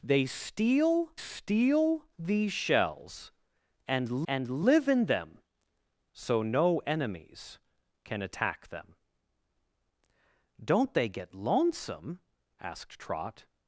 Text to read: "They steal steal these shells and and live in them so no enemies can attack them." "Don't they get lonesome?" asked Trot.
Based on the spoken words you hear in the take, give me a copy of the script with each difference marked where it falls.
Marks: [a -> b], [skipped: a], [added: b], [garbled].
"They steal steal these shells and and live in them so no enemies can attack them." "Don't they get lonesome?" asked Trot.